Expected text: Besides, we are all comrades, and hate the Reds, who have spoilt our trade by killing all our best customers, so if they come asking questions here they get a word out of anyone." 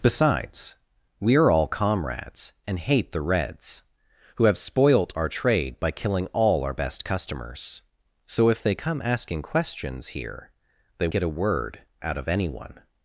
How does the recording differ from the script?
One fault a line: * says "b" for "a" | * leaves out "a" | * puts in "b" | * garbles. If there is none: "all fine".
all fine